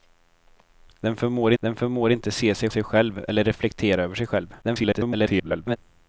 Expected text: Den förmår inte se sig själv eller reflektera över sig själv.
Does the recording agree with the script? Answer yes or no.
no